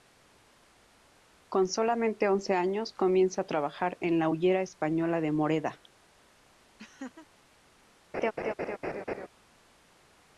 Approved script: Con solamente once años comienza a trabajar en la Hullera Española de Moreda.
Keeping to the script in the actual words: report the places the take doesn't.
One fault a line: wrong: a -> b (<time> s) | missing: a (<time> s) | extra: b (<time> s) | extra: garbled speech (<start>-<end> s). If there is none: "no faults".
no faults